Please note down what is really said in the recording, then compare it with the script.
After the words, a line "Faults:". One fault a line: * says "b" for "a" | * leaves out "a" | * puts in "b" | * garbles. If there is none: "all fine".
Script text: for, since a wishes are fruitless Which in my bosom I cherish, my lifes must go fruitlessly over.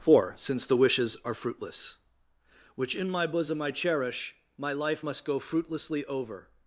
for, since the wishes are fruitless Which in my bosom I cherish, my life must go fruitlessly over.
Faults:
* says "the" for "a"
* says "life" for "lifes"